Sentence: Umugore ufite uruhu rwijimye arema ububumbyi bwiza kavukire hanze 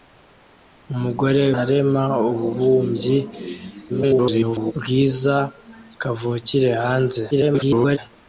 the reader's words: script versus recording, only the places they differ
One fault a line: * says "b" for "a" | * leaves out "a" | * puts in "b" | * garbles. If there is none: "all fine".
* leaves out "ufite uruhu rwijimye"
* garbles
* garbles